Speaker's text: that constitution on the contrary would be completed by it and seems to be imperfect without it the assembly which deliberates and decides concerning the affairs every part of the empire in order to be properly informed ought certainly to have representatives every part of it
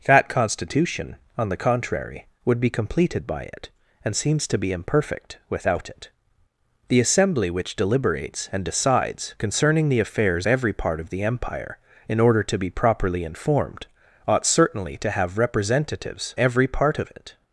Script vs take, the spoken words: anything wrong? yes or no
no